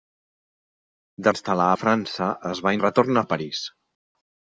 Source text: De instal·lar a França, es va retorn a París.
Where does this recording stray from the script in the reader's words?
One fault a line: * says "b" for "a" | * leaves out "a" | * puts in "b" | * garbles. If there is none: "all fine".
all fine